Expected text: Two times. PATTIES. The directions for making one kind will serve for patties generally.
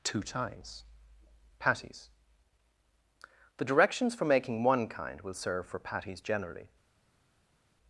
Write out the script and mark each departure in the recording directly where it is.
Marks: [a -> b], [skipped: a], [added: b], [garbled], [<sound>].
Two times. PATTIES. The directions for making one kind will serve for patties generally.